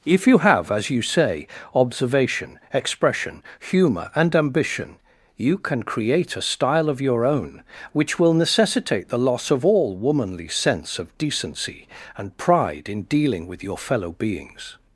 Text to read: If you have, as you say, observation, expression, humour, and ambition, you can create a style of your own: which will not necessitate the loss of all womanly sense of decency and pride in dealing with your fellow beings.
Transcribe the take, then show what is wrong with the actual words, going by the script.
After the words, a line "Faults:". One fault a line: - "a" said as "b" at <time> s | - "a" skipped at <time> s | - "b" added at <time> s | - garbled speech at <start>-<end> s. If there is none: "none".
If you have, as you say, observation, expression, humour, and ambition, you can create a style of your own: which will necessitate the loss of all womanly sense of decency and pride in dealing with your fellow beings.
Faults:
- "not" skipped at 8.3 s